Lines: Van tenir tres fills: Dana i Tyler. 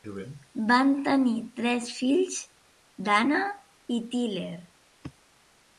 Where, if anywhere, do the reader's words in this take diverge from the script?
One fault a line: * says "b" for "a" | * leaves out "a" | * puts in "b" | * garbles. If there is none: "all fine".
all fine